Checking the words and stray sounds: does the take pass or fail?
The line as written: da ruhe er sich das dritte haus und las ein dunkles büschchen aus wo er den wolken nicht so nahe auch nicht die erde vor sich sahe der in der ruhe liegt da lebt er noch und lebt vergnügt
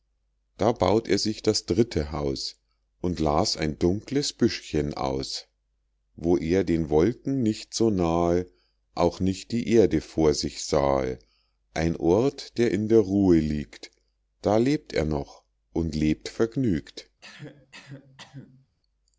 fail